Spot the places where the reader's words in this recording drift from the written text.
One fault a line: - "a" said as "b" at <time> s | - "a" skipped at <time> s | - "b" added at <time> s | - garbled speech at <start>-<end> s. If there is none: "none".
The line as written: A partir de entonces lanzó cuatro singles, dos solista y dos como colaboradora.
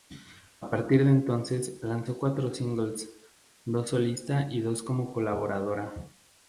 none